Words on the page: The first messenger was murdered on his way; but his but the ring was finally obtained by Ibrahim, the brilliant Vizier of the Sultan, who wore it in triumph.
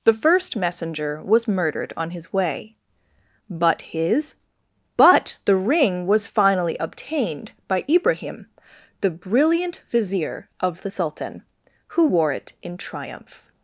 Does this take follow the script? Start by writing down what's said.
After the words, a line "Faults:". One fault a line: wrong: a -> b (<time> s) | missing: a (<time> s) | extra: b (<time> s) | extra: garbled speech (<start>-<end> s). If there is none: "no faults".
The first messenger was murdered on his way; but his but the ring was finally obtained by Ibrahim, the brilliant Vizier of the Sultan, who wore it in triumph.
Faults:
no faults